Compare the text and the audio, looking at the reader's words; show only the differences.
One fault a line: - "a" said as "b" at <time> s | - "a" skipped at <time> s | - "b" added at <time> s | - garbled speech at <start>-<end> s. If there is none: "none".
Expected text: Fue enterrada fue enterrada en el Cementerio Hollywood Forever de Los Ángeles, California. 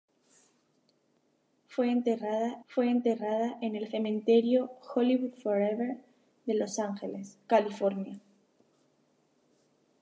none